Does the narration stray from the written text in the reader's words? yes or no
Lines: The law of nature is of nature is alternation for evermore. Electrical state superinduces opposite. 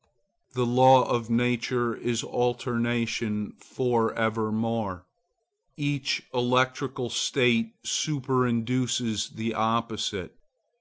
yes